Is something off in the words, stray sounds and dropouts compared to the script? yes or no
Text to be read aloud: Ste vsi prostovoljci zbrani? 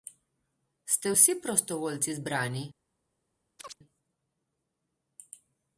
yes